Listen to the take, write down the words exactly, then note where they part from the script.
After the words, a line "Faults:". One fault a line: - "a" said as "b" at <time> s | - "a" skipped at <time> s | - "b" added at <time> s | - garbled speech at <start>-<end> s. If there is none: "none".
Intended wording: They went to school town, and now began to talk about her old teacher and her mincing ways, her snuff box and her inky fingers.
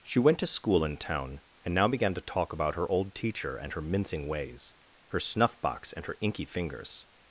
She went to school in town, and now began to talk about her old teacher and her mincing ways, her snuff box and her inky fingers.
Faults:
- "They" said as "She" at 0.0 s
- "in" added at 0.8 s